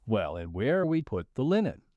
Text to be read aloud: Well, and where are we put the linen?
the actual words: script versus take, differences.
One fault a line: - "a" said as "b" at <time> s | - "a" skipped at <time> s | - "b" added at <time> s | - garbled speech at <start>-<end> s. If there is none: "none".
none